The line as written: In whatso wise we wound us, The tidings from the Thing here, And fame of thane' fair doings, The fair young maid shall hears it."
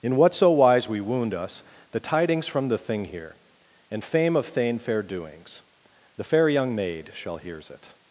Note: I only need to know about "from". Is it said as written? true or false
true